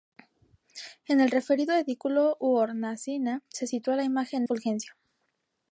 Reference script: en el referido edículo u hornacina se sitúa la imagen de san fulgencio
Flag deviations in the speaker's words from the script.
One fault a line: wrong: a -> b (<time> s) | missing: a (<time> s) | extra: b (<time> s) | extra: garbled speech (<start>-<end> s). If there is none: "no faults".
missing: de san (4.4 s)